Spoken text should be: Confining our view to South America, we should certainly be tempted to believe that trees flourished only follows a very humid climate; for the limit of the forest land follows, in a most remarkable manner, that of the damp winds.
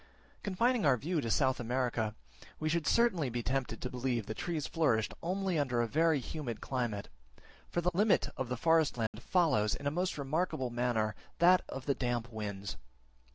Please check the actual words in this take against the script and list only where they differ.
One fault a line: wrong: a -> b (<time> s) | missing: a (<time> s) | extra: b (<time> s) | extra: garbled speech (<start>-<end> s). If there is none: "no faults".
wrong: follows -> under (5.6 s)